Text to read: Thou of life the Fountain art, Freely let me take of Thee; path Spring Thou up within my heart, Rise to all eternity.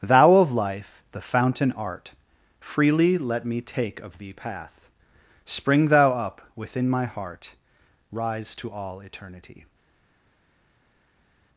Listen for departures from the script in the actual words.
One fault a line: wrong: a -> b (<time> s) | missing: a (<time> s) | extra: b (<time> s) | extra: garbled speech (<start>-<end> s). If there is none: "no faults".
no faults